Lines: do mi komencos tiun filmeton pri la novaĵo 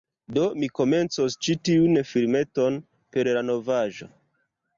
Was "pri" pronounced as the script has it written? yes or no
no